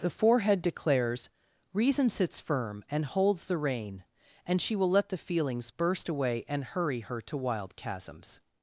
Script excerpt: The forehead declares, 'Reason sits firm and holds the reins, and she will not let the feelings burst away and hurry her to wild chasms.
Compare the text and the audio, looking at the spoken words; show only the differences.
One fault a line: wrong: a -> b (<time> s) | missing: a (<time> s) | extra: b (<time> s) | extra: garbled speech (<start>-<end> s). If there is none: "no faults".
wrong: reins -> rein (3.6 s)
missing: not (4.9 s)